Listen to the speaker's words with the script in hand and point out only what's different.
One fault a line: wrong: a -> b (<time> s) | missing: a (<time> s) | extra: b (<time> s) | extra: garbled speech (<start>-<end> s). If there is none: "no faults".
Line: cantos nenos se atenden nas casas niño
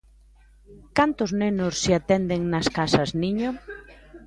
no faults